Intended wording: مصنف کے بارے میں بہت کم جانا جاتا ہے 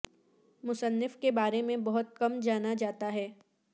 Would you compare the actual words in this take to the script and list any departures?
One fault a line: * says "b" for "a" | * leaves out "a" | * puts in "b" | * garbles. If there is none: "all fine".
all fine